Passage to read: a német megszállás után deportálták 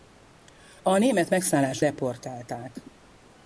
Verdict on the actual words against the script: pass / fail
fail